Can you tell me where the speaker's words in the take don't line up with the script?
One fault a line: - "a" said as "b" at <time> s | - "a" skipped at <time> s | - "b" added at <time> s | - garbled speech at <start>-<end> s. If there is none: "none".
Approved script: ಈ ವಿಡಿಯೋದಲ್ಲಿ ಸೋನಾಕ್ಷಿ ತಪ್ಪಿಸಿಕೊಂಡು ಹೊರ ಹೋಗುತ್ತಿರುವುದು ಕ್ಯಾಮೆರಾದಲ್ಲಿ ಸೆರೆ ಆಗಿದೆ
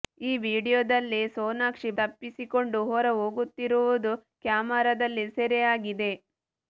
none